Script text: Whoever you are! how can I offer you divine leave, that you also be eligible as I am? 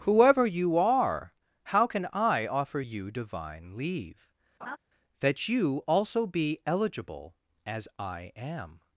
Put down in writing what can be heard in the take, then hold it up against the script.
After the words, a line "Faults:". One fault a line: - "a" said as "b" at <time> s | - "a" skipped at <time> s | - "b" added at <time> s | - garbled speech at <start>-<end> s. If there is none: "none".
Whoever you are! how can I offer you divine leave, that you also be eligible as I am?
Faults:
none